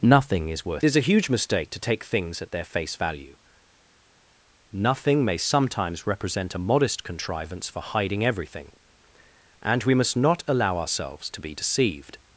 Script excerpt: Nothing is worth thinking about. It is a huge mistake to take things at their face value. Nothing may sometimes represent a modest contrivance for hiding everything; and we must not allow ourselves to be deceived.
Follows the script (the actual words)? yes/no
no